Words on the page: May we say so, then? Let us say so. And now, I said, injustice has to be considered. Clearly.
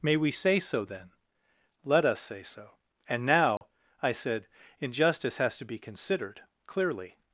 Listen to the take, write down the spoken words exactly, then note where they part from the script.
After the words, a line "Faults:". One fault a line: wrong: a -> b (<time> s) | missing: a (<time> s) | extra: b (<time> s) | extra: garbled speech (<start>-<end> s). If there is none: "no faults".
May we say so, then? Let us say so. And now, I said, injustice has to be considered. Clearly.
Faults:
no faults